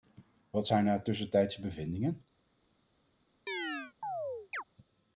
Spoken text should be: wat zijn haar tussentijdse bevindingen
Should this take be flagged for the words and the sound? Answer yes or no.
yes